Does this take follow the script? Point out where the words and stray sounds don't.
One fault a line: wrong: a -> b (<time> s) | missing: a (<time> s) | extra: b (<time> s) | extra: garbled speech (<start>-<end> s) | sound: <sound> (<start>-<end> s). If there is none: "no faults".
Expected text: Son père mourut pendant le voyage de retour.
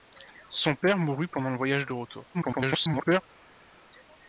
extra: garbled speech (2.3-3.2 s)